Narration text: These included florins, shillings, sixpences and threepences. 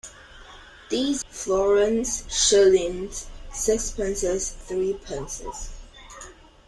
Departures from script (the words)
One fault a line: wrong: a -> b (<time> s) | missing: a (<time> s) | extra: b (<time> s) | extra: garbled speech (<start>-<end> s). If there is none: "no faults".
missing: included (1.2 s)
missing: and (4.6 s)